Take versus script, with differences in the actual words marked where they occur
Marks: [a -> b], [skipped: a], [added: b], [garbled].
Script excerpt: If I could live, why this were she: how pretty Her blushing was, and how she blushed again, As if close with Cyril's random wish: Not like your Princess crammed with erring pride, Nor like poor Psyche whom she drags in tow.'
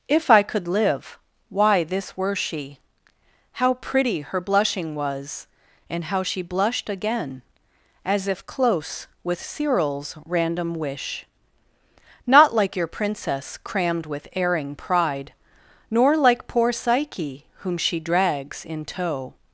If I could live, why this were she: how pretty Her blushing was, and how she blushed again, As if close with Cyril's random wish: Not like your Princess crammed with erring pride, Nor like poor Psyche whom she drags in tow.'